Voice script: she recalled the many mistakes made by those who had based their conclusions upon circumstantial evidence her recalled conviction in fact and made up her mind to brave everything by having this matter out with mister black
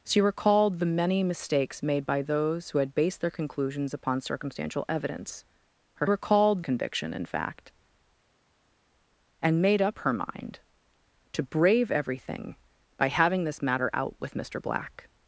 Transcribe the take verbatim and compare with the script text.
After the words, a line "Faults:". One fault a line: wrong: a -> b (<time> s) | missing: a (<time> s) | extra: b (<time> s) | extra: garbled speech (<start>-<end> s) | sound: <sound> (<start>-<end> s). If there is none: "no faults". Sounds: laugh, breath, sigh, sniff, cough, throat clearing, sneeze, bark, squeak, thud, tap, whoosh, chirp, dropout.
she recalled the many mistakes made by those who had based their conclusions upon circumstantial evidence her recalled conviction in fact and made up her mind to brave everything by having this matter out with mister black
Faults:
no faults